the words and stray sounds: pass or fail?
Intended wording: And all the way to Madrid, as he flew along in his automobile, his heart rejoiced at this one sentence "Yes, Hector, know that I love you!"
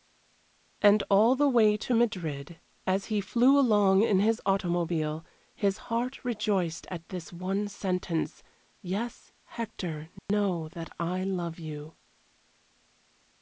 fail